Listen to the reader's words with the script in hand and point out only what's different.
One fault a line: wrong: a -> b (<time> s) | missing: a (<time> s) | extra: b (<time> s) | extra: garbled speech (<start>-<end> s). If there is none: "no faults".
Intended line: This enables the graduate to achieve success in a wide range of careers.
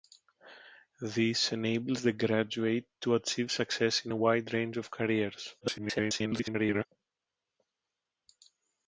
extra: garbled speech (5.6-6.9 s)